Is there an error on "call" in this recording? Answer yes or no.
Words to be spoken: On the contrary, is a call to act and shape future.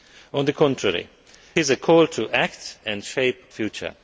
no